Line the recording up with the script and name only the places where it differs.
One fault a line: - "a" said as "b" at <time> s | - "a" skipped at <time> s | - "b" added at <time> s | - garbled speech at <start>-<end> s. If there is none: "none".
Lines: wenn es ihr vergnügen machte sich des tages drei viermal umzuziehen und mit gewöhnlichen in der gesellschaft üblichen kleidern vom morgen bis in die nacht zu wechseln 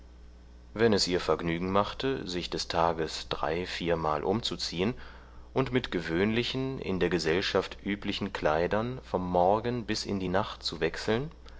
none